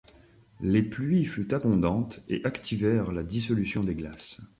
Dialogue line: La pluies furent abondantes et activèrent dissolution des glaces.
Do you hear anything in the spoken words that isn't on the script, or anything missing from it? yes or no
yes